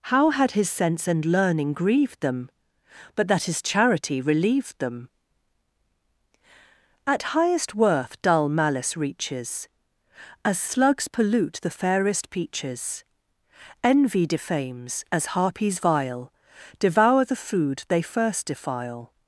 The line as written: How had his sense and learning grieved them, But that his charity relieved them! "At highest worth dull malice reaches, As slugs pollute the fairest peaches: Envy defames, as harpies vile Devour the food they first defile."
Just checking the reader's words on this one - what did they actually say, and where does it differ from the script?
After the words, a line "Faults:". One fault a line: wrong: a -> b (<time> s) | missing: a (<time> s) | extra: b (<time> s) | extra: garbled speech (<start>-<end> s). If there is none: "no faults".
How had his sense and learning grieved them, But that his charity relieved them! "At highest worth dull malice reaches, As slugs pollute the fairest peaches: Envy defames, as harpies vile Devour the food they first defile."
Faults:
no faults